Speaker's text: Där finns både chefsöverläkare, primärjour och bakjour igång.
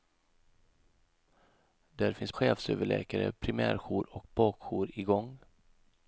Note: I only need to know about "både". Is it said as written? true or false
false